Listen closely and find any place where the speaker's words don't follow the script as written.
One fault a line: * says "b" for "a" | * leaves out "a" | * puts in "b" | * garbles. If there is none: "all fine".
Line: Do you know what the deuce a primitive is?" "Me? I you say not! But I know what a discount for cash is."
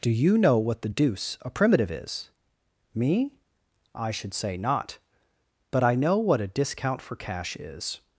* says "should" for "you"